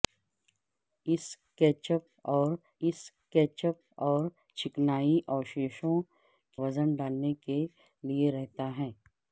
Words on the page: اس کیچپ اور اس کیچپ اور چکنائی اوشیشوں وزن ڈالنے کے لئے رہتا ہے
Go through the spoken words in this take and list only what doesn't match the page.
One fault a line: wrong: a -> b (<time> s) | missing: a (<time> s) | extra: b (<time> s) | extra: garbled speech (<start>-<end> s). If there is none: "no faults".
no faults